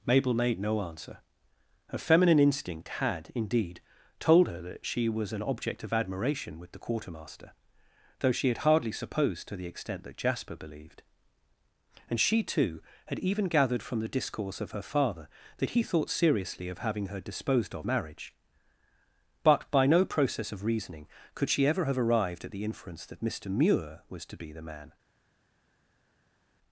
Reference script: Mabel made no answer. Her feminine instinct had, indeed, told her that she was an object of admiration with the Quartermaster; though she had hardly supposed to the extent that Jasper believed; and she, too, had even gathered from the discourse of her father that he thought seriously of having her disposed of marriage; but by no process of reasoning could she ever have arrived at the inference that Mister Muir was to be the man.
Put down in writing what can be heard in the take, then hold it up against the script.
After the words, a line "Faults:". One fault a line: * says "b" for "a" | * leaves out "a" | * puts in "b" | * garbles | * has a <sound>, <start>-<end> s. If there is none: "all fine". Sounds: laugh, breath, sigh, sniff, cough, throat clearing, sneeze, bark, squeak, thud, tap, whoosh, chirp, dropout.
Mabel made no answer. Her feminine instinct had, indeed, told her that she was an object of admiration with the Quartermaster; though she had hardly supposed to the extent that Jasper believed; and she, too, had even gathered from the discourse of her father that he thought seriously of having her disposed of marriage; but by no process of reasoning could she ever have arrived at the inference that Mister Muir was to be the man.
Faults:
all fine